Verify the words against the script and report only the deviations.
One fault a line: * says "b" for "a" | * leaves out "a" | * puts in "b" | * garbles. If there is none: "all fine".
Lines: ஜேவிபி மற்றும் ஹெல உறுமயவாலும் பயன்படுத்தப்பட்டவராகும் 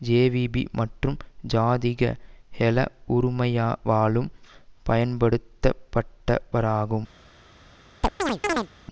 * puts in "ஜாதிக"